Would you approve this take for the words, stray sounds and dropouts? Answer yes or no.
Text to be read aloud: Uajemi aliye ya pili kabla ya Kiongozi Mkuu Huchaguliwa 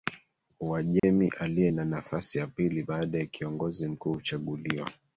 no